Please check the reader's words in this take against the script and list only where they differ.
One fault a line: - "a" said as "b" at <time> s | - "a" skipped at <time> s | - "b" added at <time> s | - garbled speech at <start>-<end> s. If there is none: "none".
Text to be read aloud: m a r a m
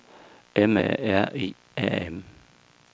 - "i" added at 1.3 s